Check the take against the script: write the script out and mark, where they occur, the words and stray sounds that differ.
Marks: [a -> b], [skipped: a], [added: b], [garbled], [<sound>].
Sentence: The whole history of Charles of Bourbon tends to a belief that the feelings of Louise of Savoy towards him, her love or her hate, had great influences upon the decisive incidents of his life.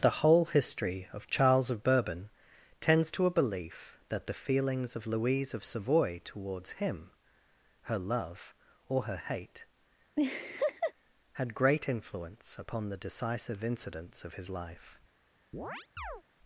The whole history of Charles of Bourbon tends to a belief that the feelings of Louise of Savoy towards him, her love or her hate, [laugh] had great [influences -> influence] upon the decisive incidents of his life. [chirp]